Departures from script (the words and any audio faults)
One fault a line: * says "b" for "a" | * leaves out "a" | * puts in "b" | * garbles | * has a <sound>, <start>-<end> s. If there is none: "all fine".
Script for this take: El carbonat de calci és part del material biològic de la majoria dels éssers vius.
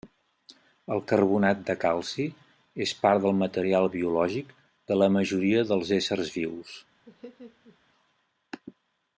* has a laugh, 7.1-7.8 s